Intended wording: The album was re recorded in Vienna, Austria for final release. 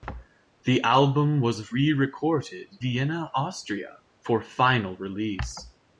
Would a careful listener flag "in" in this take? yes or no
yes